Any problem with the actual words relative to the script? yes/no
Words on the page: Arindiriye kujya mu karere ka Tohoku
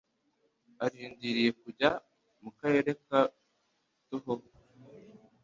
no